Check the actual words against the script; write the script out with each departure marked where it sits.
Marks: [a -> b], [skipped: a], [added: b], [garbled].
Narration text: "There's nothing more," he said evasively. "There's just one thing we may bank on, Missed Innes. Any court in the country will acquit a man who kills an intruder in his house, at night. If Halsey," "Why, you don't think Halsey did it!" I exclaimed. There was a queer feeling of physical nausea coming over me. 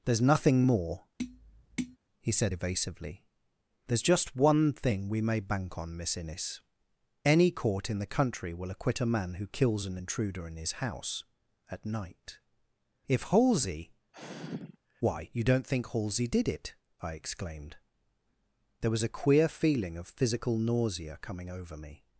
"There's nothing more," he said evasively. "There's just one thing we may bank on, [Missed -> Miss] Innes. Any court in the country will acquit a man who kills an intruder in his house, at night. If Halsey," "Why, you don't think Halsey did it!" I exclaimed. There was a queer feeling of physical nausea coming over me.